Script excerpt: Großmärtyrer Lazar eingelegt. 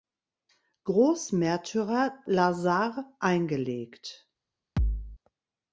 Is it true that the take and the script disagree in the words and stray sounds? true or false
true